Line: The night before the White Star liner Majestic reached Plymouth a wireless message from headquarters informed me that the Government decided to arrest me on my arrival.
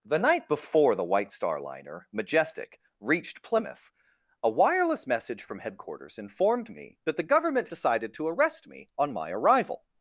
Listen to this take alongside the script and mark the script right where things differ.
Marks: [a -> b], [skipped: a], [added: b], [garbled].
The night before the White Star liner Majestic reached Plymouth a wireless message from headquarters informed me that the Government decided to arrest me on my arrival.